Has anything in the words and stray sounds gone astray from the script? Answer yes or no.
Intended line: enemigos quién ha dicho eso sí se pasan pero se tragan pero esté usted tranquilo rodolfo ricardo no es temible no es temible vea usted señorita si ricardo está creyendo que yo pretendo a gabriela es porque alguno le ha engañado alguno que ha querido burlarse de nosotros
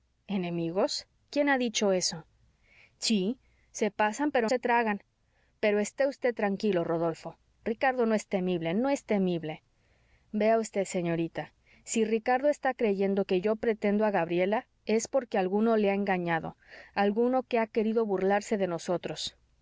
no